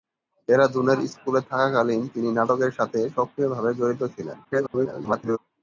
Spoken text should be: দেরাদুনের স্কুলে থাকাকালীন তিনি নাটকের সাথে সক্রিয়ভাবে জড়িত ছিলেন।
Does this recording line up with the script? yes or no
no